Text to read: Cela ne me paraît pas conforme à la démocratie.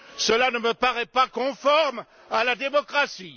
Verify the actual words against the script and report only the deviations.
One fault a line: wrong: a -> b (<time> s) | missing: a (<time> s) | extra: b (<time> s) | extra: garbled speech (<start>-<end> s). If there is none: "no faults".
no faults